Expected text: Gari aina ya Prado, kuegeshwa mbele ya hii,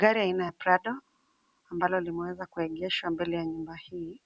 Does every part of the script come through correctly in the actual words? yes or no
no